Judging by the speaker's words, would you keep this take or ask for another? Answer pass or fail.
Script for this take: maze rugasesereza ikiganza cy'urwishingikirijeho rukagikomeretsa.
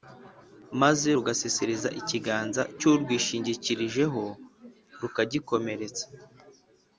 pass